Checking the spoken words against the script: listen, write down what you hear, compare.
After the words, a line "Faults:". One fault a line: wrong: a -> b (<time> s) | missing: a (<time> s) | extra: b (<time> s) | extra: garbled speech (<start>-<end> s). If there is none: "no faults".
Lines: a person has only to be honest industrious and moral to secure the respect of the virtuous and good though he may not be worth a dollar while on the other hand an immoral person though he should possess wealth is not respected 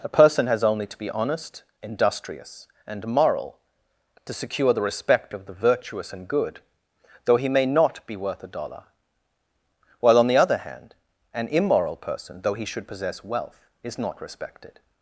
a person has only to be honest industrious and moral to secure the respect of the virtuous and good though he may not be worth a dollar while on the other hand an immoral person though he should possess wealth is not respected
Faults:
no faults